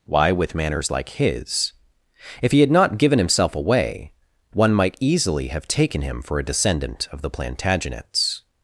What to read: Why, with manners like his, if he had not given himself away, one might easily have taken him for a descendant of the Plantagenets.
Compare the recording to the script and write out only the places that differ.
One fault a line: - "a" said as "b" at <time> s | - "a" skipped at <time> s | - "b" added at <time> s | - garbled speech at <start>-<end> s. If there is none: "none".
none